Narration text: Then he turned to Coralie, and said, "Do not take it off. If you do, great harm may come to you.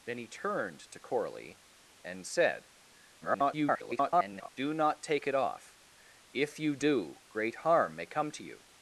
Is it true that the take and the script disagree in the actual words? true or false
true